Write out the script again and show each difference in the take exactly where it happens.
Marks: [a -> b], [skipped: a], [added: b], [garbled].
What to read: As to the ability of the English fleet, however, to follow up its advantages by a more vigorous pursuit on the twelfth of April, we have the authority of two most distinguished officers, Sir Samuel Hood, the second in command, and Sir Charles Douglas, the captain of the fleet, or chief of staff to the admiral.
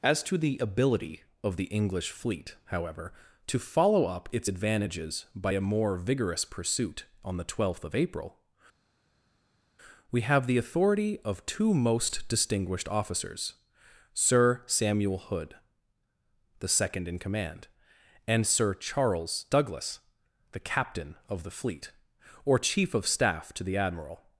As to the ability of the English fleet, however, to follow up its advantages by a more vigorous pursuit on the twelfth of April, we have the authority of two most distinguished officers, Sir Samuel Hood, the second in command, and Sir Charles Douglas, the captain of the fleet, or chief of staff to the admiral.